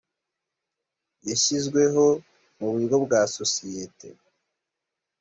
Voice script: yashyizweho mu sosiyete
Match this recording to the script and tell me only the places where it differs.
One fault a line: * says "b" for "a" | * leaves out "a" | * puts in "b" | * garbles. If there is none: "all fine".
* puts in "buryo bwa"